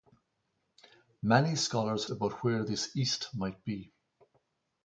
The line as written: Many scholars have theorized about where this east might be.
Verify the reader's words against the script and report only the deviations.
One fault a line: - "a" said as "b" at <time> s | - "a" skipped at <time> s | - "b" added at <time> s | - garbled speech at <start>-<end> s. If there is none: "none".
- "have theorized" skipped at 2.0 s